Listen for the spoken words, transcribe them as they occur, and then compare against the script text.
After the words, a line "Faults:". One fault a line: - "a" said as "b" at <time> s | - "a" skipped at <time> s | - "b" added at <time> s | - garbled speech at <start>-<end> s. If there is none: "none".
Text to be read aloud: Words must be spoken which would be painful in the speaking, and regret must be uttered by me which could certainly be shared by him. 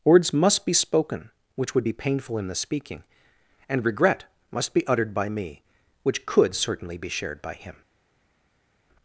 Words must be spoken which would be painful in the speaking, and regret must be uttered by me which could certainly be shared by him.
Faults:
none